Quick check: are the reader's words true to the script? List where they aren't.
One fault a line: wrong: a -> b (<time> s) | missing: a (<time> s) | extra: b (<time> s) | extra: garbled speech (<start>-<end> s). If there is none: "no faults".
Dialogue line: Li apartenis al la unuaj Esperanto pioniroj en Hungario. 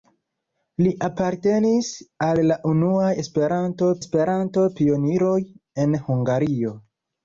extra: Esperanto (4.1 s)